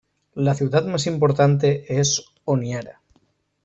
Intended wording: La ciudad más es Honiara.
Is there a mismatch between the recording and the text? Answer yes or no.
yes